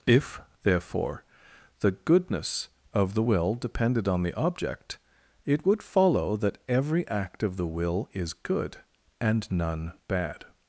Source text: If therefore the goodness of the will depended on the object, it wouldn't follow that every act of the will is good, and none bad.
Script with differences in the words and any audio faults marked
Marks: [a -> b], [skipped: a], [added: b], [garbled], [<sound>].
If therefore the goodness of the will depended on the object, it [wouldn't -> would] follow that every act of the will is good, and none bad.